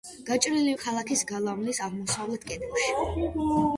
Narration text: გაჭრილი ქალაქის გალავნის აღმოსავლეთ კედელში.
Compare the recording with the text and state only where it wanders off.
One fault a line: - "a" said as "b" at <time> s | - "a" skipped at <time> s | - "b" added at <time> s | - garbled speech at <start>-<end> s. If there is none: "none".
none